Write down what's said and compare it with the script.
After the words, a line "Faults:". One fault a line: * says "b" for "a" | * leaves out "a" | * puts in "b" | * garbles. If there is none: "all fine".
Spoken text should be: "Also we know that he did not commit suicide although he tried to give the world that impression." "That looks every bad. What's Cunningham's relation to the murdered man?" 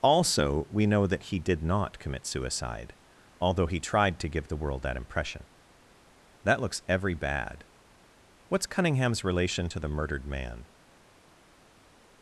"Also we know that he did not commit suicide although he tried to give the world that impression." "That looks every bad. What's Cunningham's relation to the murdered man?"
Faults:
all fine